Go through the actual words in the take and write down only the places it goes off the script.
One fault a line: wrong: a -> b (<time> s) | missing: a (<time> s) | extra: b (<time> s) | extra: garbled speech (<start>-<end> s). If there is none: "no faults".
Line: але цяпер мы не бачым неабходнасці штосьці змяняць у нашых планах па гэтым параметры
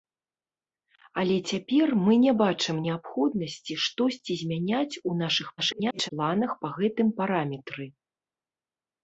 extra: garbled speech (5.6-6.1 s)